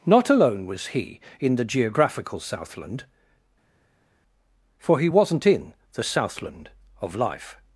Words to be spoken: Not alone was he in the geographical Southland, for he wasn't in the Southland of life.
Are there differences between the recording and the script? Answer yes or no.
no